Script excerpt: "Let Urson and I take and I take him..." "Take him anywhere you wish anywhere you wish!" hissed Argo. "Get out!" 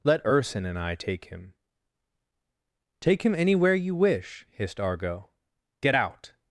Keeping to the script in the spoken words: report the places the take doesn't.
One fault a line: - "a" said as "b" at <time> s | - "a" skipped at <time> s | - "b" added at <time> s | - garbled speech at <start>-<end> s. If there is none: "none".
- "and I take" skipped at 1.2 s
- "anywhere you wish" skipped at 4.5 s